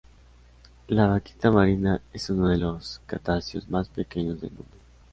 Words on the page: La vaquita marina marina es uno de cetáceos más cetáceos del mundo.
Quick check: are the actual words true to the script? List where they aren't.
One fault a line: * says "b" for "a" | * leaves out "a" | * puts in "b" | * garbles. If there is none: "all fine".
* leaves out "marina"
* puts in "los"
* says "pequeños" for "cetáceos"